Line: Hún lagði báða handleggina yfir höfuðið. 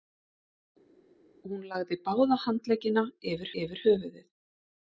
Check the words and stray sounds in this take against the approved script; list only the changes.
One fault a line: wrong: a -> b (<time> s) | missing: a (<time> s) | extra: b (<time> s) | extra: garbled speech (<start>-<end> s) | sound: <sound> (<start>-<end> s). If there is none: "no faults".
extra: yfir (3.6 s)